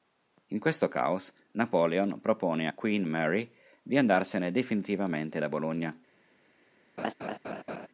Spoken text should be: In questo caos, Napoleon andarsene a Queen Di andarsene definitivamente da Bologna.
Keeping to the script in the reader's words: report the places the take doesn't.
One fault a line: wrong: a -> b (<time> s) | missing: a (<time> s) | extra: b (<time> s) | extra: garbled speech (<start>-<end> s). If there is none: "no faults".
wrong: andarsene -> propone (2.2 s)
extra: Mary (3.0 s)